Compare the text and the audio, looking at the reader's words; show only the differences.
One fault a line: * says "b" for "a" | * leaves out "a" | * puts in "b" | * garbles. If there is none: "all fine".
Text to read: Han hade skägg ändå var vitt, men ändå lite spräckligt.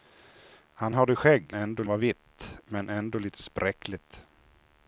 all fine